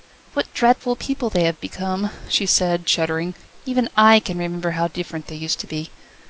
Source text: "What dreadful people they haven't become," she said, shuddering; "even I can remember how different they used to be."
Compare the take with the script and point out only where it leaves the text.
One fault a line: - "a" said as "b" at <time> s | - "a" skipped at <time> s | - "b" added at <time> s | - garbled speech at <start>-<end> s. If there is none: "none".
- "haven't" said as "have" at 1.4 s